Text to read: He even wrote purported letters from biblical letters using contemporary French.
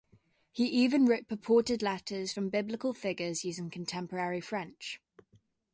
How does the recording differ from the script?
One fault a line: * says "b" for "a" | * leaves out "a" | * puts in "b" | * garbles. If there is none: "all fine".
* says "figures" for "letters"